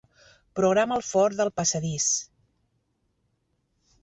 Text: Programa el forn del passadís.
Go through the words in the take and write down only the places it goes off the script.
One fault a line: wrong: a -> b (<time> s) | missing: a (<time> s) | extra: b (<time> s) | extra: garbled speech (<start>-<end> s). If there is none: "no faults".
no faults